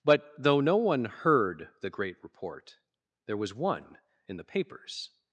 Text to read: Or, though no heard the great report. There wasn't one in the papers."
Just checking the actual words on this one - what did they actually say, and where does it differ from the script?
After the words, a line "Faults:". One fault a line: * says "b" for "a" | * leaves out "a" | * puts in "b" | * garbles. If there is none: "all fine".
But, though no one heard the great report. There was one in the papers."
Faults:
* says "But" for "Or"
* puts in "one"
* says "was" for "wasn't"